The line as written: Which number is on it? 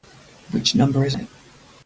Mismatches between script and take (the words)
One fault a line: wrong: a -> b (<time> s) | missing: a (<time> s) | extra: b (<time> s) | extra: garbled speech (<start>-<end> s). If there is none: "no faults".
missing: on (1.1 s)